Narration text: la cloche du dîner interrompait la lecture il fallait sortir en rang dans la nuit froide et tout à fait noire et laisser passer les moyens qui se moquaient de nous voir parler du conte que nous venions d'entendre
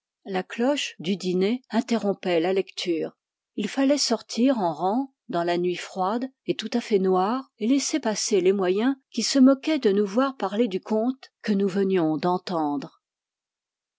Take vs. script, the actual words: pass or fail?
pass